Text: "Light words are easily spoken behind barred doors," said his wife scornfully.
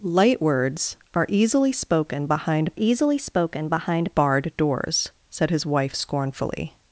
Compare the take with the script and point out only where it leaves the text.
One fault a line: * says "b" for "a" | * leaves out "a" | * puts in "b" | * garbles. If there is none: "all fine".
* puts in "easily spoken behind"